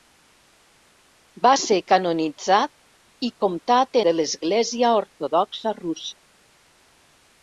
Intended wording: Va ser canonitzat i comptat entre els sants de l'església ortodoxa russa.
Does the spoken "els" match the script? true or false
false